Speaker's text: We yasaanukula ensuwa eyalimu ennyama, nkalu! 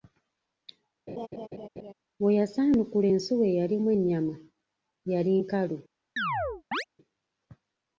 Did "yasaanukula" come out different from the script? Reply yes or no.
no